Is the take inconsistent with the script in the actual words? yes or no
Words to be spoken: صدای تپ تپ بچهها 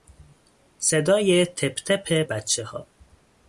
no